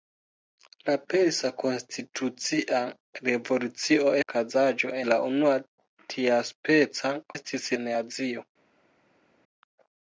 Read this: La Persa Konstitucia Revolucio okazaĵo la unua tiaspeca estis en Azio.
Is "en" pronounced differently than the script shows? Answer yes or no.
no